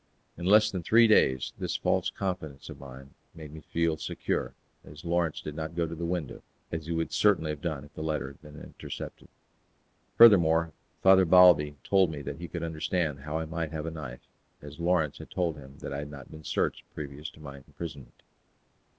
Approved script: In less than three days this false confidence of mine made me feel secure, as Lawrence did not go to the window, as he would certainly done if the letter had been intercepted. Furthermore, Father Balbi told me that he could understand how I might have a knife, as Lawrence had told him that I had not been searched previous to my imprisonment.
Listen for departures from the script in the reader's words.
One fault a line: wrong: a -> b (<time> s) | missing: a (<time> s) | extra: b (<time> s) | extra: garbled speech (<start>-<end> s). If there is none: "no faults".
extra: have (7.5 s)